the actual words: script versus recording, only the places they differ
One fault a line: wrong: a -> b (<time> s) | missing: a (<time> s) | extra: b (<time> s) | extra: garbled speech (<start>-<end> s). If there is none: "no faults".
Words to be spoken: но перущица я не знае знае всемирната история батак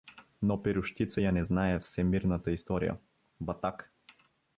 missing: знае (1.8 s)